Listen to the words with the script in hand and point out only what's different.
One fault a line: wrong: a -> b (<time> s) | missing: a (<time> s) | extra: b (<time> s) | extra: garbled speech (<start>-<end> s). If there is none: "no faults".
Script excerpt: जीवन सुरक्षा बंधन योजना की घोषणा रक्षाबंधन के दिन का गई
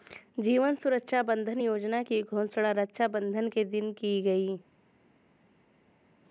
wrong: का -> की (3.9 s)